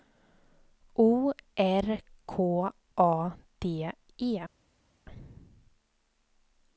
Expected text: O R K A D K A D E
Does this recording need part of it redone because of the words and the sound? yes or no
yes